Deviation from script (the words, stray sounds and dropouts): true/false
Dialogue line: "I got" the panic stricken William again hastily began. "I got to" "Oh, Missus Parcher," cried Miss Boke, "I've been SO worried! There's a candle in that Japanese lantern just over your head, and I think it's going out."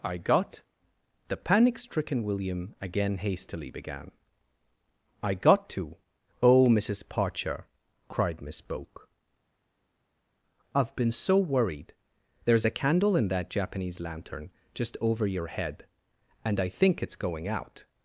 false